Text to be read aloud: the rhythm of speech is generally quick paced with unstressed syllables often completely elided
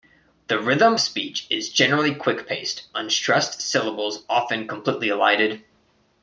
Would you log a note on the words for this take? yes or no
yes